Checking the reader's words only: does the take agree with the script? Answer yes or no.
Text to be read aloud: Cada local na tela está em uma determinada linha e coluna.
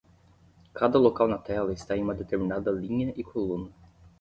yes